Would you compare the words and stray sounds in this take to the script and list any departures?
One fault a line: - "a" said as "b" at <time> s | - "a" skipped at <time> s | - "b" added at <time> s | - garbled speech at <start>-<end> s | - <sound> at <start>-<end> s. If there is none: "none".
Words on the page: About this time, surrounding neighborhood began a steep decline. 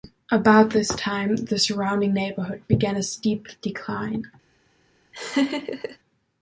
- "the" added at 1.4 s
- laugh at 5.1-6.0 s